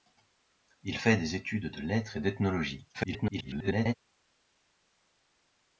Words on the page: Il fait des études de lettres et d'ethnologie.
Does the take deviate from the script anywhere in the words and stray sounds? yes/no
yes